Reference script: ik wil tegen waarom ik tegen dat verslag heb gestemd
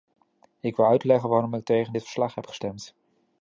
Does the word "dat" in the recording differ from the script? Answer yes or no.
yes